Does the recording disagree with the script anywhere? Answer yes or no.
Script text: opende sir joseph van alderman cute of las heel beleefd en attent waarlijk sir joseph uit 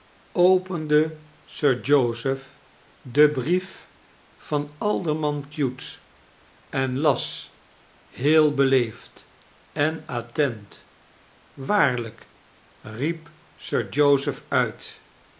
yes